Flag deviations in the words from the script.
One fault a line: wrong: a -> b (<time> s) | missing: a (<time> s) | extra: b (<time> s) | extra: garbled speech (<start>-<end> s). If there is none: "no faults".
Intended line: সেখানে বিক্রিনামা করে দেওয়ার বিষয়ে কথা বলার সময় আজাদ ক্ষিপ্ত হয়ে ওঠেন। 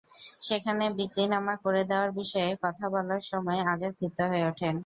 no faults